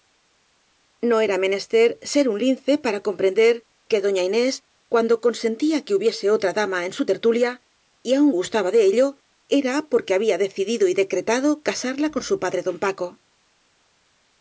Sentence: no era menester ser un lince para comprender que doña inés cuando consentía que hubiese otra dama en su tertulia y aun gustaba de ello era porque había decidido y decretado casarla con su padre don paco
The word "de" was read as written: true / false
true